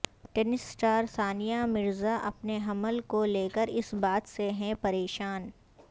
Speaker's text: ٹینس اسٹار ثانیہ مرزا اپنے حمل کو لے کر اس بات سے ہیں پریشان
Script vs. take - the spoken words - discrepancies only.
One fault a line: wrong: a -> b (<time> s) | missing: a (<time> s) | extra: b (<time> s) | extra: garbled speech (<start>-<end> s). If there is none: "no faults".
no faults